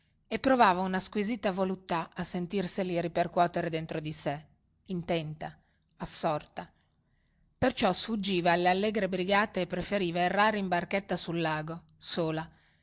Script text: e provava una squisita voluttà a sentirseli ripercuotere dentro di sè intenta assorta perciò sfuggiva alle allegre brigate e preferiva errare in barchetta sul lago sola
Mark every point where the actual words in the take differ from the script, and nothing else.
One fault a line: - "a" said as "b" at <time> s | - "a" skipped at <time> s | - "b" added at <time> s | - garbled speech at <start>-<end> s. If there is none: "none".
none